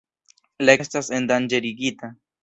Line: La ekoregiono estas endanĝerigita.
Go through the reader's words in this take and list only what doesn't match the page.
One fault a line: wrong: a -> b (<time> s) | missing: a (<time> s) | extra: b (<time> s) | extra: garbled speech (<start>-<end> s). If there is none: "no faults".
missing: ekoregiono (0.8 s)